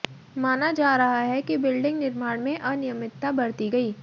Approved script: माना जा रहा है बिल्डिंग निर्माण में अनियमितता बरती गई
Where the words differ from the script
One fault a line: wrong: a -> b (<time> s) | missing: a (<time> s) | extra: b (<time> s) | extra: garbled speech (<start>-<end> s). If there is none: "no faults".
extra: कि (1.4 s)